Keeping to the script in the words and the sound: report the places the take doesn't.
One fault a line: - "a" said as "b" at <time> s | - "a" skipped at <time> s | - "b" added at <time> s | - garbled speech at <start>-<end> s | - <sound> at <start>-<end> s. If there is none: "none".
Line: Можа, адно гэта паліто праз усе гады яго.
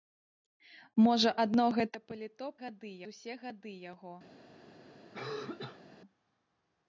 - "праз" said as "гады" at 2.6 s
- cough at 5.1-5.9 s